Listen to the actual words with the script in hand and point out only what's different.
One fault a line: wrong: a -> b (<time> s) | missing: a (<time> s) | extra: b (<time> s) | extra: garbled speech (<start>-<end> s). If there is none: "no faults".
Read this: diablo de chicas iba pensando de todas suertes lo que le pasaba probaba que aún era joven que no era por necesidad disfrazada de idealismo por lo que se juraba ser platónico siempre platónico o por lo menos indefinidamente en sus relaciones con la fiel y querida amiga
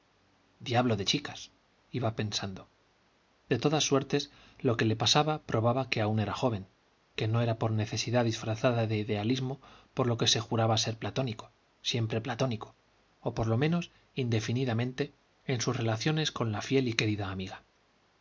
no faults